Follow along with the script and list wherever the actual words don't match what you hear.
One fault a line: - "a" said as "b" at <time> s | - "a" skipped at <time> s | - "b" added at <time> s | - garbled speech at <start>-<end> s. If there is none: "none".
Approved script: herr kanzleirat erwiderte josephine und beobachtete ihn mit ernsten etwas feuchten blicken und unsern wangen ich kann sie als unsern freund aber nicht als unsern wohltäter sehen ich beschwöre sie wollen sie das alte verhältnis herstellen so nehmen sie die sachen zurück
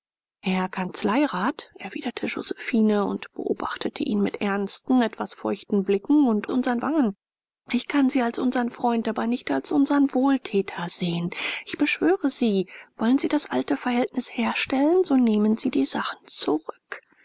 none